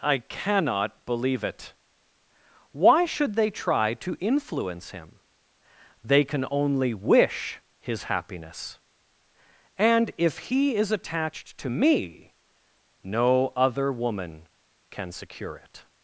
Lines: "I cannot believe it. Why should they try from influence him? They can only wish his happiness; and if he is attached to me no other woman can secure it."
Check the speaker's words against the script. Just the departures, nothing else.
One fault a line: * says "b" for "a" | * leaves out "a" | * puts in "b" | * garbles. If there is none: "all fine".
* says "to" for "from"